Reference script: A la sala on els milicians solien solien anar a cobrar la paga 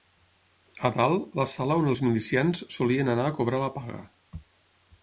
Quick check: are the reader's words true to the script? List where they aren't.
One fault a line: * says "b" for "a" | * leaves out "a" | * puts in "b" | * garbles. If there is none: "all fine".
* puts in "dalt"
* leaves out "solien"